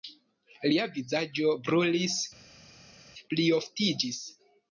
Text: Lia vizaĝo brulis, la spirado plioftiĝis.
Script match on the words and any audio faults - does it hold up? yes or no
no